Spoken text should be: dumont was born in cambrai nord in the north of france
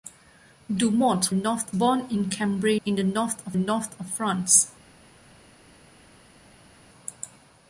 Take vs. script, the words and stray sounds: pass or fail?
fail